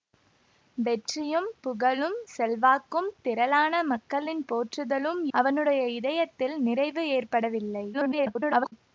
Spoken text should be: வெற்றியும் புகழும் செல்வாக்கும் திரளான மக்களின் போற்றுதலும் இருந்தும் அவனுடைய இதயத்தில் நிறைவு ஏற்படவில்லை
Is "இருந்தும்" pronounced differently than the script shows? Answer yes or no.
yes